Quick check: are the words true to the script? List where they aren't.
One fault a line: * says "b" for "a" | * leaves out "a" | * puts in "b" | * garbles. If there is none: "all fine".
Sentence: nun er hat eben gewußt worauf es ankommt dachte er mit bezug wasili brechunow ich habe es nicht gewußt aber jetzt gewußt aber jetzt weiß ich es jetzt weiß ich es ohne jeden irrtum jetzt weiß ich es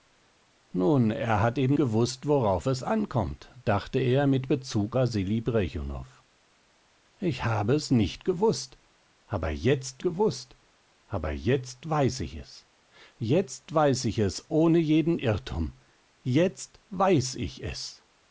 all fine